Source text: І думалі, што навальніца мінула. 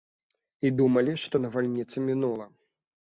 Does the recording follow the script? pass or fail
pass